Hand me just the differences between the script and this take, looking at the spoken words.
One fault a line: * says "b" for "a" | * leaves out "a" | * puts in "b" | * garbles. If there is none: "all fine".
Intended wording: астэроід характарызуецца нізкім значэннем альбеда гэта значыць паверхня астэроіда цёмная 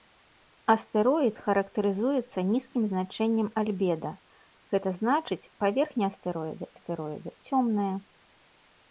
* puts in "астэроіда"